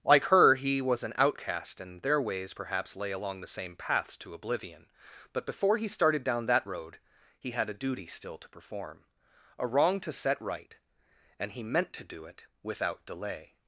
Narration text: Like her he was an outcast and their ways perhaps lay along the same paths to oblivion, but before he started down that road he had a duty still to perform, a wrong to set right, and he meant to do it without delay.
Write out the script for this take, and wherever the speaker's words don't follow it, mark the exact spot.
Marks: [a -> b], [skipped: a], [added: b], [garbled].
Like her he was an outcast and their ways perhaps lay along the same paths to oblivion, but before he started down that road he had a duty still to perform, a wrong to set right, and he meant to do it without delay.